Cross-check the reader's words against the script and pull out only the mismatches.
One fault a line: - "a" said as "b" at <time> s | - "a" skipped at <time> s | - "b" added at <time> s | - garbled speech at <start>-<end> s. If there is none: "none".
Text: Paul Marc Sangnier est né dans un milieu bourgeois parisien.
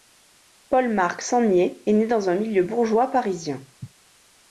none